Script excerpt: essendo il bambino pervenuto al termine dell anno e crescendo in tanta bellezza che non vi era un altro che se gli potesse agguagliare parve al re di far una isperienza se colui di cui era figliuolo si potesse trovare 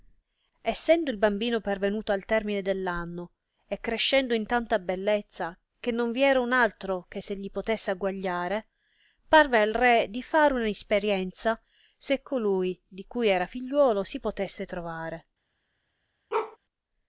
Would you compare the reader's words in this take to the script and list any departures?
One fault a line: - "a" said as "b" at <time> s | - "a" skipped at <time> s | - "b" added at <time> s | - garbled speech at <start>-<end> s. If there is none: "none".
none